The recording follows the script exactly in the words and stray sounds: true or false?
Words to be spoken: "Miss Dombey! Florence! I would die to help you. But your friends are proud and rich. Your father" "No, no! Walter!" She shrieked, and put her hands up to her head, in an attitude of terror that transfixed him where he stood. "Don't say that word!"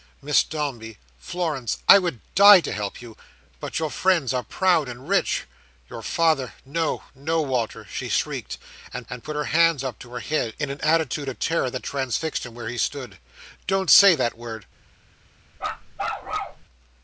false